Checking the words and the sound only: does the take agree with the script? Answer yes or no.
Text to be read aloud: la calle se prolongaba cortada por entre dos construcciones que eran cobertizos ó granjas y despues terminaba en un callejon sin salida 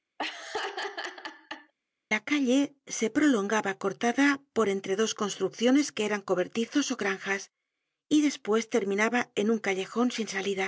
no